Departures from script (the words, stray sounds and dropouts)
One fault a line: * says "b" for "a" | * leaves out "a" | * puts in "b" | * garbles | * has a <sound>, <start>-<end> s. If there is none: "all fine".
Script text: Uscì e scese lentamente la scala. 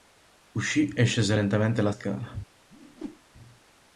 * has a whoosh, 2.7-3.2 s